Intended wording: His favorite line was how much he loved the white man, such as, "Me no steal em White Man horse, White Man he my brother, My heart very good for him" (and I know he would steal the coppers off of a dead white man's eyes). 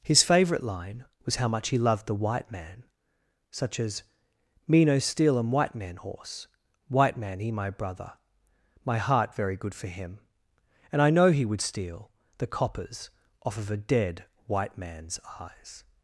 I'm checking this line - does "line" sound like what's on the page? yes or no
yes